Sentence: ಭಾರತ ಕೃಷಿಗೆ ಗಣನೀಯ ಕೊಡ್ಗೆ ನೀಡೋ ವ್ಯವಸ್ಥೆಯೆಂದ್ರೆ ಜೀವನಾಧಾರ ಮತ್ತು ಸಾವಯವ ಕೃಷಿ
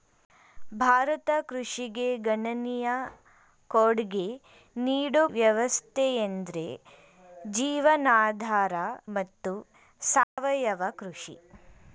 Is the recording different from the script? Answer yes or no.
no